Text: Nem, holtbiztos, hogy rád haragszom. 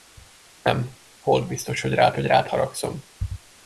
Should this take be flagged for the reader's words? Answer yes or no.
yes